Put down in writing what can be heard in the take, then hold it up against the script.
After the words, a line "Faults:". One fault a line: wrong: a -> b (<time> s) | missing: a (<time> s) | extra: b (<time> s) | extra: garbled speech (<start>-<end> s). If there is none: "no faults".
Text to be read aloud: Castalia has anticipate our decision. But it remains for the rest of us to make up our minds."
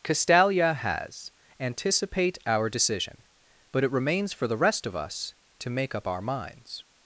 Castalia has anticipate our decision. But it remains for the rest of us to make up our minds."
Faults:
no faults